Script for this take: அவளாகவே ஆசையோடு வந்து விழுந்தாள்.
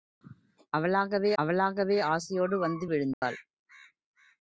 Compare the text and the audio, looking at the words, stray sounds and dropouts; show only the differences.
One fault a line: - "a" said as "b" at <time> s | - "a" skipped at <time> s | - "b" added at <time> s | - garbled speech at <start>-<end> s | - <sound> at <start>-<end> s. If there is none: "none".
- "அவளாகவே" added at 1.4 s
- dropout at 3.1-3.2 s